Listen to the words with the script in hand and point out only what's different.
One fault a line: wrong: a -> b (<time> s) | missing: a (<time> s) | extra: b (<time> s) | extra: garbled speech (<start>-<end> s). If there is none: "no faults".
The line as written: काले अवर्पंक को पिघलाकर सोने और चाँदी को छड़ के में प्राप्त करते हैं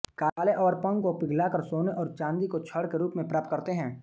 extra: रूप (3.0 s)